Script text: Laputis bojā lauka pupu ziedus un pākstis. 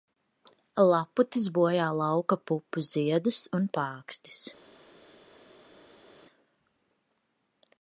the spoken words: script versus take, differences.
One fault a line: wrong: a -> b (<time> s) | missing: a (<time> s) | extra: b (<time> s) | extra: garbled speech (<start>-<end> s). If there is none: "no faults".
no faults